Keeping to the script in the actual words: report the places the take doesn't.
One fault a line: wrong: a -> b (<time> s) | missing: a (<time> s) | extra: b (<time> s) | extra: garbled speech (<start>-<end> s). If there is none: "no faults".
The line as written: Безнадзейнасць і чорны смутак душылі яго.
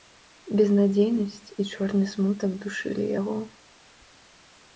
no faults